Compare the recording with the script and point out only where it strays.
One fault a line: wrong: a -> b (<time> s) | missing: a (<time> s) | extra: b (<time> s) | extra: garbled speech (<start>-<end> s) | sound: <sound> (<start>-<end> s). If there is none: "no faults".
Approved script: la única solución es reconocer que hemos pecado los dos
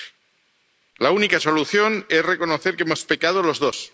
no faults